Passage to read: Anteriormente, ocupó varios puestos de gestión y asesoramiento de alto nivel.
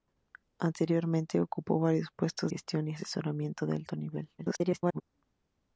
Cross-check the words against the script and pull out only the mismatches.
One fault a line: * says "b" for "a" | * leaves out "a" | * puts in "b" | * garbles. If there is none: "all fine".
* leaves out "de"
* garbles